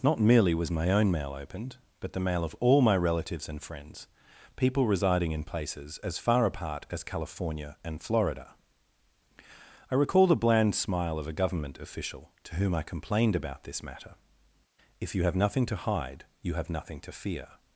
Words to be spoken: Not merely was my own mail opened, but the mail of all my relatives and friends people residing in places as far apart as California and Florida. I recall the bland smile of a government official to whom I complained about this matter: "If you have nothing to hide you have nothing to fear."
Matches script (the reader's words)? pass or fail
pass